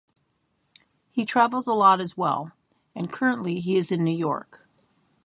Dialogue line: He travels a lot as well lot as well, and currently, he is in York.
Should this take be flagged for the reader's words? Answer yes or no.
yes